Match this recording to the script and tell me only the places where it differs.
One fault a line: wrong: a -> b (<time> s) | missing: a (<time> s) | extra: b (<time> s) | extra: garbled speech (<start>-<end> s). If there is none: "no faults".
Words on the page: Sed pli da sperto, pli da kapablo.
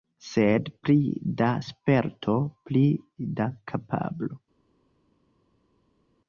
no faults